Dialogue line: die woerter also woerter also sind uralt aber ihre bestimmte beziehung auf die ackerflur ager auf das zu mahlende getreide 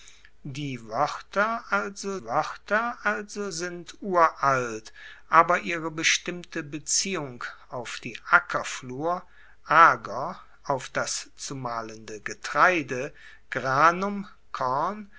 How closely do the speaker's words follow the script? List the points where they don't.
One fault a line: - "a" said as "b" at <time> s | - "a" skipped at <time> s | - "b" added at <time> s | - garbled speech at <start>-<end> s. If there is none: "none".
none